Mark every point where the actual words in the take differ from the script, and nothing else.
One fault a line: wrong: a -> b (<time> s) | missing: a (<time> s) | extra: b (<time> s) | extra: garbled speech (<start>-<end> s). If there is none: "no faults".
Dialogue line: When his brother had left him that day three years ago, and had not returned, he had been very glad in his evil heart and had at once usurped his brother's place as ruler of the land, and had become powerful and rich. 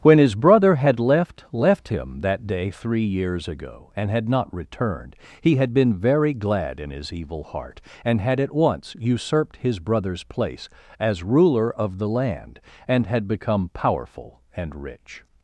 extra: left (1.5 s)